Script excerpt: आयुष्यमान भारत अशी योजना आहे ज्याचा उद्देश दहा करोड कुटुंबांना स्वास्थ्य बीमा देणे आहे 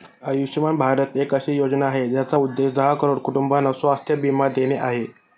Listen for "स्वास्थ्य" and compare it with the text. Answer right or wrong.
right